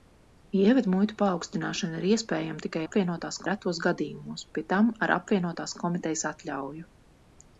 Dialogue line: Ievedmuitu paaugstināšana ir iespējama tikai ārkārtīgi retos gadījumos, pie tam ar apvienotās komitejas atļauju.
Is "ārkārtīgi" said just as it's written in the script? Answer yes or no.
no